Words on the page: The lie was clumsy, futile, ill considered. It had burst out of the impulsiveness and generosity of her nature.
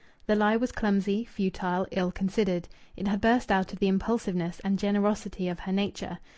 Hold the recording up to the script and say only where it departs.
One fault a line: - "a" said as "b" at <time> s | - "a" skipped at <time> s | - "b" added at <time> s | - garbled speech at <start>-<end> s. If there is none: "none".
none